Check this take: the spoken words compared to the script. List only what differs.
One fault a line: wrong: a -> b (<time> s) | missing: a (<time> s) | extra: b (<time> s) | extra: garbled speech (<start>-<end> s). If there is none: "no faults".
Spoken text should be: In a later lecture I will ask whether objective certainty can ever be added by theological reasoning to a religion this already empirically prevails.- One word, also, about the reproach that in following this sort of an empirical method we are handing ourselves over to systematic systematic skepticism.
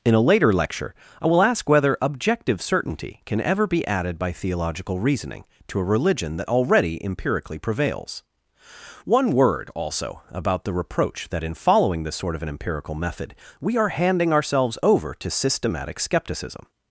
wrong: this -> that (6.4 s)
missing: systematic (16.0 s)